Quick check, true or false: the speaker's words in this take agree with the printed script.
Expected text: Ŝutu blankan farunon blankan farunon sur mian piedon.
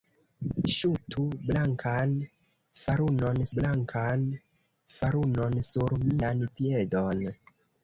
true